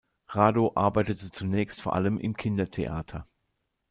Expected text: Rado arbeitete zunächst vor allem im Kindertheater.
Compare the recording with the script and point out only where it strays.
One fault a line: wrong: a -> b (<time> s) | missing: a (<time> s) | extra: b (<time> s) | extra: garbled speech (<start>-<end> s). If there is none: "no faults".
no faults